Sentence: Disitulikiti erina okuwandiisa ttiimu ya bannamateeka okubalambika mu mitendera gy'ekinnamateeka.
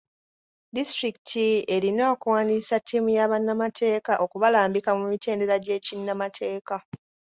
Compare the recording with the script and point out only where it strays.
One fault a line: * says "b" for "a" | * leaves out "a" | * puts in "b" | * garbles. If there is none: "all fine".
all fine